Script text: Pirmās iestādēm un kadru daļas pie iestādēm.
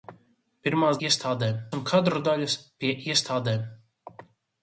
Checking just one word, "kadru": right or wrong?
right